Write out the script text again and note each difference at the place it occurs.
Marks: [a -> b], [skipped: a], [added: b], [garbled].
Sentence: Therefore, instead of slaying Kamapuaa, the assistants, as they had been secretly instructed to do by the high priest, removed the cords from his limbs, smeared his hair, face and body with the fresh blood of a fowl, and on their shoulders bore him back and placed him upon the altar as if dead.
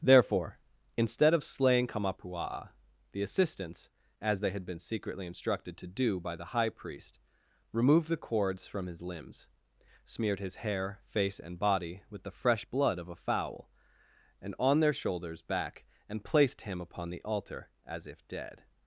Therefore, instead of slaying Kamapuaa, the assistants, as they had been secretly instructed to do by the high priest, removed the cords from his limbs, smeared his hair, face and body with the fresh blood of a fowl, and on their shoulders [skipped: bore him] back and placed him upon the altar as if dead.